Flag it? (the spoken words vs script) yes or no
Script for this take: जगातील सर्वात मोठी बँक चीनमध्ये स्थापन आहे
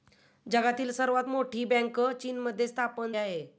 no